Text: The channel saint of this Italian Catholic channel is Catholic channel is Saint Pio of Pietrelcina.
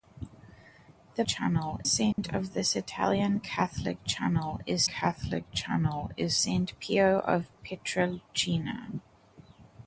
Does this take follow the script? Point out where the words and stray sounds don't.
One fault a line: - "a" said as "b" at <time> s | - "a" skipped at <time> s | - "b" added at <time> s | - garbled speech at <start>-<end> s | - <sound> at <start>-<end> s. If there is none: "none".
- dropout at 2.1-2.2 s